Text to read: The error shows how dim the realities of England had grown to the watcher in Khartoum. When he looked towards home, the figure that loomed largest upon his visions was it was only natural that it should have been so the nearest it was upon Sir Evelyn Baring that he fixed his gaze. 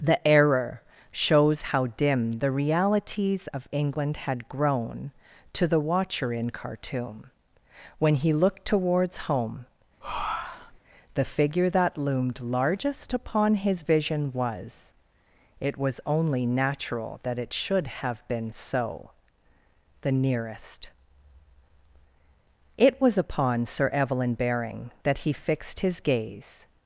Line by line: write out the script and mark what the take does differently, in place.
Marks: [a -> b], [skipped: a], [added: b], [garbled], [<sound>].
The error shows how dim the realities of England had grown to the watcher in Khartoum. When he looked towards home, [breath] the figure that loomed largest upon his [visions -> vision] was it was only natural that it should have been so the nearest it was upon Sir Evelyn Baring that he fixed his gaze.